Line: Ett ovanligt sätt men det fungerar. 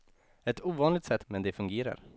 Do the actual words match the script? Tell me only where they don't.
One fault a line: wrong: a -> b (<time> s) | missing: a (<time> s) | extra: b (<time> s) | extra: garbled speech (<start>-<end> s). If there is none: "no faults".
no faults